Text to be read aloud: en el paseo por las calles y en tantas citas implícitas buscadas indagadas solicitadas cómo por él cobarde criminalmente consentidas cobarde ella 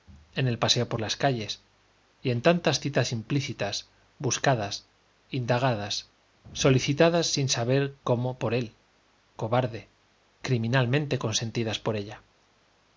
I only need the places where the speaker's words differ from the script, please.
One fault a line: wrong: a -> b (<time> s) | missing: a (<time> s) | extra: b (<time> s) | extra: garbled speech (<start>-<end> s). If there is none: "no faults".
extra: sin saber (7.3 s)
wrong: cobarde -> por (11.8 s)